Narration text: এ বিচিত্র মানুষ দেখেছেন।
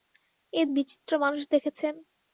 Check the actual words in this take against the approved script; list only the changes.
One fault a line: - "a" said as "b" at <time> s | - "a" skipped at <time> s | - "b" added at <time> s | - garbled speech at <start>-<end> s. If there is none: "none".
none